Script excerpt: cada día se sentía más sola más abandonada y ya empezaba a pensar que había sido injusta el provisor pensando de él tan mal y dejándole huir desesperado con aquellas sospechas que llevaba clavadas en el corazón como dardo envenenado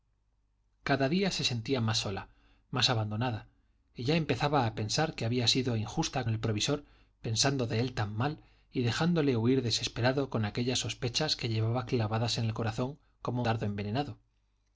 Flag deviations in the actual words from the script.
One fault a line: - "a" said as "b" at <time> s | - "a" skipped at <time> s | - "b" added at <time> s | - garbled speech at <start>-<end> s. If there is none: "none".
none